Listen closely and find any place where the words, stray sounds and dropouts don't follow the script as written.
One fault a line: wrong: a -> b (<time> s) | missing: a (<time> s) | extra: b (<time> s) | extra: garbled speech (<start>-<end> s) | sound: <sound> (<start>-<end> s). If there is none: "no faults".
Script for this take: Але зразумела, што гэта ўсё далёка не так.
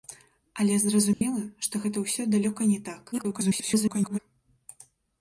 sound: dropout (1.1-1.2 s)
extra: garbled speech (3.1-4.2 s)